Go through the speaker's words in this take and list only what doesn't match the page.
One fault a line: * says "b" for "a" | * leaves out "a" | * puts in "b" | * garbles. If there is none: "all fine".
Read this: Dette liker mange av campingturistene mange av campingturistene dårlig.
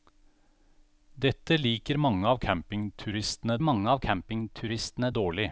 all fine